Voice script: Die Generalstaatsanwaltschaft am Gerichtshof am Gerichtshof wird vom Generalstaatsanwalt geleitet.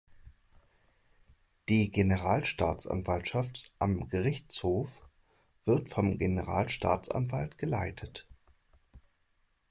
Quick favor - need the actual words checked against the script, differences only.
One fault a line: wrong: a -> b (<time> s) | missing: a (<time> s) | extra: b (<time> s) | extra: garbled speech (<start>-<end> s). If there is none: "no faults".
missing: am Gerichtshof (5.1 s)